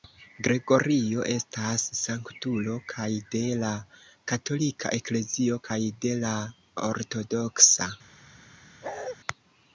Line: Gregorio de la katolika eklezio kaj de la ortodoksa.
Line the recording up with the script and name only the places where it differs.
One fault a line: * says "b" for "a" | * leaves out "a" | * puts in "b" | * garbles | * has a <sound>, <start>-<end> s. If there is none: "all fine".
* puts in "estas sanktulo kaj"
* has a bark, 8.8-9.2 s